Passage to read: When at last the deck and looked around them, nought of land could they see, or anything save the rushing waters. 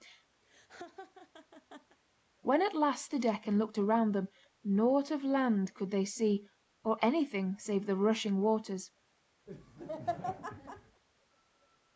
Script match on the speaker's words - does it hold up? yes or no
yes